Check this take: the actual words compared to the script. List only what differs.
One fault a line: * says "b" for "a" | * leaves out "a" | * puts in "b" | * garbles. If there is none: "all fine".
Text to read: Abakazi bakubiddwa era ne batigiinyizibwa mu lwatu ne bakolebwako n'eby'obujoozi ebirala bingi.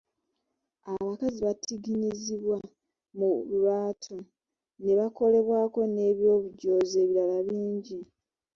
* leaves out "bakubiddwa era ne"